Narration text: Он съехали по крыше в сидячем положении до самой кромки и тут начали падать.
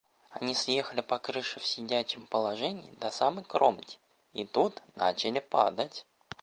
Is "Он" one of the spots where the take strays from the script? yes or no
yes